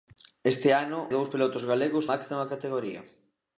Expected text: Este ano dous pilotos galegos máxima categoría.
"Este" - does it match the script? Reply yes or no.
yes